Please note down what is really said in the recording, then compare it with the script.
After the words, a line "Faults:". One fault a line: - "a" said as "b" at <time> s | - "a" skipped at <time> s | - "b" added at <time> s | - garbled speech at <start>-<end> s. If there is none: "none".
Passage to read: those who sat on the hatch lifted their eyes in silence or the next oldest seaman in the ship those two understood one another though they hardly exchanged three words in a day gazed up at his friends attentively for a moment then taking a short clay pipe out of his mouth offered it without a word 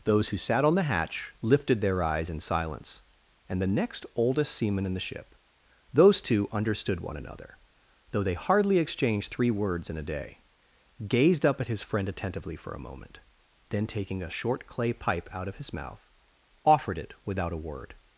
those who sat on the hatch lifted their eyes in silence and the next oldest seaman in the ship those two understood one another though they hardly exchanged three words in a day gazed up at his friend attentively for a moment then taking a short clay pipe out of his mouth offered it without a word
Faults:
- "or" said as "and" at 3.5 s
- "friends" said as "friend" at 11.8 s